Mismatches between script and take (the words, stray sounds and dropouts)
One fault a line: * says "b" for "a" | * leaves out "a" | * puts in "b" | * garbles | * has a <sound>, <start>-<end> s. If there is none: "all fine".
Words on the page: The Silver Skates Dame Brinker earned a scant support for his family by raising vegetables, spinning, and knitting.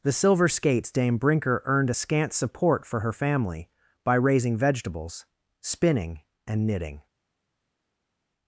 * says "her" for "his"